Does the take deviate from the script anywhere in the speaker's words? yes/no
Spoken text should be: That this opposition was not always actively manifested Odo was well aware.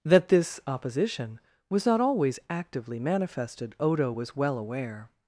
no